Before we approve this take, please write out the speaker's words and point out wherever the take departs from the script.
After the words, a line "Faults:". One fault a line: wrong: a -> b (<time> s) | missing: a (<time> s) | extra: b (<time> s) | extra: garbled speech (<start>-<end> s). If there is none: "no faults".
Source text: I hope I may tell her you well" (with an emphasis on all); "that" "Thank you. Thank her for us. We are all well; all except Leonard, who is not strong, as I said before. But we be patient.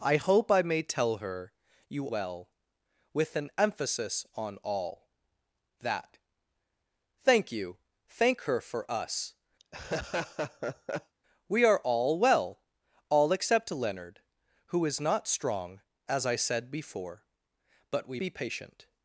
I hope I may tell her you well" (with an emphasis on all); "that" "Thank you. Thank her for us. We are all well; all except Leonard, who is not strong, as I said before. But we be patient.
Faults:
no faults